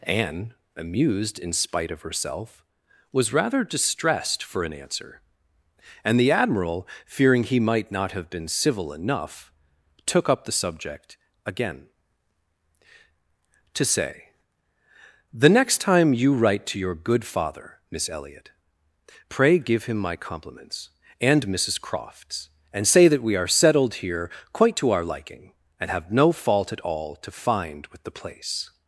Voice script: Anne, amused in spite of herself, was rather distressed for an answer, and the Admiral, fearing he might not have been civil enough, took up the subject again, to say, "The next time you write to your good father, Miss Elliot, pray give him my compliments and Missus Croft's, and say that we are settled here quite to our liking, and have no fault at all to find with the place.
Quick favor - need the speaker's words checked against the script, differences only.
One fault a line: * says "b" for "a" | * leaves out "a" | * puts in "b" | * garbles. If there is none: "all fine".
all fine